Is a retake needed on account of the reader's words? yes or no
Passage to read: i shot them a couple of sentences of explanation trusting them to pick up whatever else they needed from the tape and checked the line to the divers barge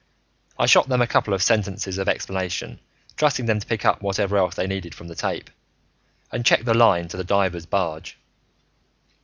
no